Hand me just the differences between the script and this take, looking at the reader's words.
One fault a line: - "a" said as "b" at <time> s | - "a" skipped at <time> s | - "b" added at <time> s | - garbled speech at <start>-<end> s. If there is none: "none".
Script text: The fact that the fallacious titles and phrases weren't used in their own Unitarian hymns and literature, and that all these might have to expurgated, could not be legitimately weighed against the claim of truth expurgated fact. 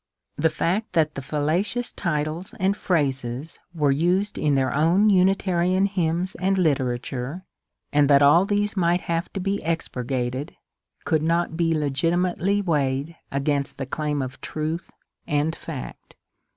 - "weren't" said as "were" at 3.7 s
- "be" added at 9.4 s
- "expurgated" said as "and" at 15.3 s